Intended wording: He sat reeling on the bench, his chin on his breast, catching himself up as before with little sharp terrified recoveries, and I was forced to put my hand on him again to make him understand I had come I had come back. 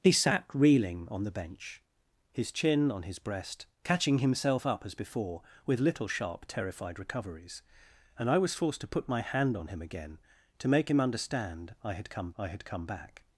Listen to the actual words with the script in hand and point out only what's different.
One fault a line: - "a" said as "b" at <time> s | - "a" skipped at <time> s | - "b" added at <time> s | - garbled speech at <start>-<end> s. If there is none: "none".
none